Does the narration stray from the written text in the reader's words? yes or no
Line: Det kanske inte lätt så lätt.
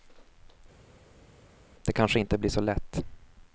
yes